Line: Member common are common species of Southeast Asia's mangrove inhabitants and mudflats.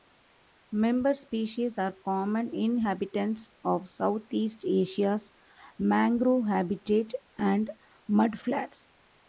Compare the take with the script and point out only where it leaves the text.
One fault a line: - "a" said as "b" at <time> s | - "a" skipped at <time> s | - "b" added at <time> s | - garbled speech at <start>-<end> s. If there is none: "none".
- "common" said as "species" at 1.1 s
- "species" said as "inhabitants" at 2.5 s
- "inhabitants" said as "habitat" at 6.5 s